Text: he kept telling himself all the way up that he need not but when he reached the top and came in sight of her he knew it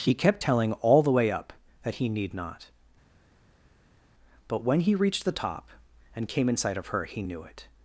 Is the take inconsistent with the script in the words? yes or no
yes